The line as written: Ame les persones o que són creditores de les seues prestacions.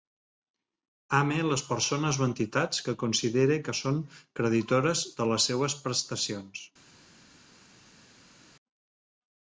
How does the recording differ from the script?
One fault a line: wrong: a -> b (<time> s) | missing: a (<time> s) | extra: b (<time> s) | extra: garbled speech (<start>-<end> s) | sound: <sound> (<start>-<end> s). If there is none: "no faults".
extra: entitats que considere (2.3 s)